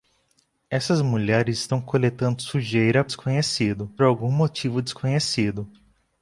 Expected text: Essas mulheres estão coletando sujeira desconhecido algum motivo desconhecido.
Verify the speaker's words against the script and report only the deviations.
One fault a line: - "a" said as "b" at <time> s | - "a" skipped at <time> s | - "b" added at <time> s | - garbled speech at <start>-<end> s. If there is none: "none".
none